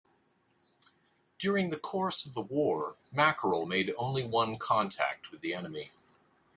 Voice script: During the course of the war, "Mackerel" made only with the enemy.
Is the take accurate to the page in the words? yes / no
no